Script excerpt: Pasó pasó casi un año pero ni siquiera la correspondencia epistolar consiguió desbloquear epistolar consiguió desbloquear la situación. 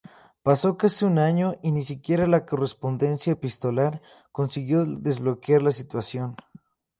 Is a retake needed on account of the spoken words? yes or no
yes